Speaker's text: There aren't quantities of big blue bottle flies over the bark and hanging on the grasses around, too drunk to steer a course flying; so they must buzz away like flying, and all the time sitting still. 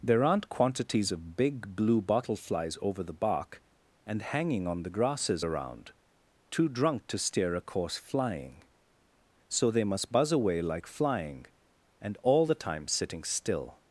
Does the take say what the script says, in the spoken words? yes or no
yes